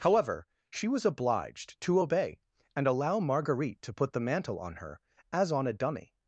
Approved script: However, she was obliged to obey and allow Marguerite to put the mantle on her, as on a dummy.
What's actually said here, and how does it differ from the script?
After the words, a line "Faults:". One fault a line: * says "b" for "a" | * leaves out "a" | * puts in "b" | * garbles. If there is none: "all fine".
However, she was obliged to obey and allow Marguerite to put the mantle on her, as on a dummy.
Faults:
all fine